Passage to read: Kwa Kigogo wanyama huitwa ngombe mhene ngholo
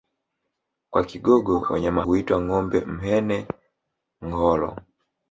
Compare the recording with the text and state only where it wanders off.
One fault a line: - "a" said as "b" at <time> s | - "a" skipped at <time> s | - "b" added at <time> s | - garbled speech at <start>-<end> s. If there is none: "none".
none